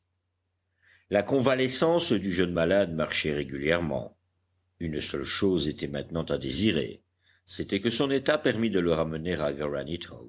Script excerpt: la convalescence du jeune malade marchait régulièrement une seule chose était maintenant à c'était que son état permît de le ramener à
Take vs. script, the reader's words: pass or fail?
fail